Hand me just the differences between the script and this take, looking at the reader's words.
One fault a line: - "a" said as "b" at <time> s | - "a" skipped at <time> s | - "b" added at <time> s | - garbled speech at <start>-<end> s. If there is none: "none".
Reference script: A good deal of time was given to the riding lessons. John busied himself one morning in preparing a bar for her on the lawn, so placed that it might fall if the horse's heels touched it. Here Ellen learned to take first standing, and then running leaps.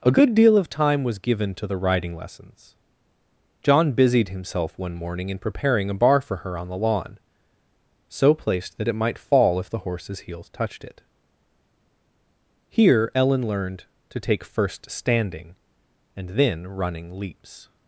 none